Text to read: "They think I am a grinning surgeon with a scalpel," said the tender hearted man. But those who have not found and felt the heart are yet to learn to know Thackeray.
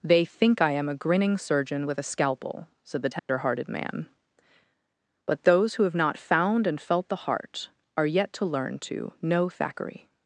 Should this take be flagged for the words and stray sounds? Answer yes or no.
yes